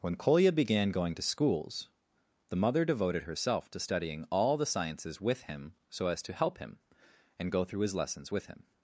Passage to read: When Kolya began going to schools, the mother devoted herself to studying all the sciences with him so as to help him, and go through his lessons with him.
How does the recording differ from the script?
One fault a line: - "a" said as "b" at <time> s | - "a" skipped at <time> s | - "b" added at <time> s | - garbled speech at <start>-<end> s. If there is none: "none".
none